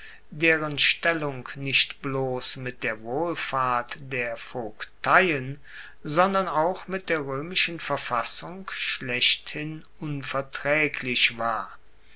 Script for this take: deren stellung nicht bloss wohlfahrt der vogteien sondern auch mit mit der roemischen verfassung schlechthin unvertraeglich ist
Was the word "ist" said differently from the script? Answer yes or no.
yes